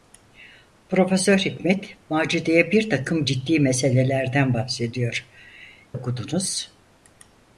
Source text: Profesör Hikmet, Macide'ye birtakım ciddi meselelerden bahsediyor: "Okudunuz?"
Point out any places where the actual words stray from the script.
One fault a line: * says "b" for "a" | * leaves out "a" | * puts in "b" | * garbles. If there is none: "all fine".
all fine